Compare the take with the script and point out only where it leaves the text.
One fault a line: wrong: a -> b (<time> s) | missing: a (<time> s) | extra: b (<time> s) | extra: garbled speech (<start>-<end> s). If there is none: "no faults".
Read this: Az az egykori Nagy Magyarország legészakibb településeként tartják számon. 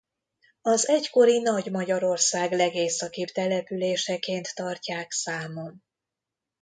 missing: az (0.9 s)